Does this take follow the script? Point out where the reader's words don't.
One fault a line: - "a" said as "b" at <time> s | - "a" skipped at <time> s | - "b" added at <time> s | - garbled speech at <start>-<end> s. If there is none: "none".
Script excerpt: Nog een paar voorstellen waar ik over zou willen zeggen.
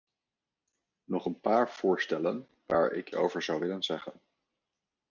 none